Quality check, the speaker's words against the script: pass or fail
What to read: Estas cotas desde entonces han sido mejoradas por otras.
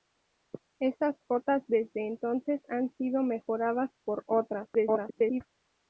fail